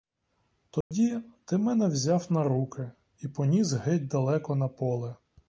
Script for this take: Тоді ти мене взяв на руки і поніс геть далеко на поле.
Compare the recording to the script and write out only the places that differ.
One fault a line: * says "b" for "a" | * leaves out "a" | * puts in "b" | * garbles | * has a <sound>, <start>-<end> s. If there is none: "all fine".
* has a dropout, 0.8-0.9 s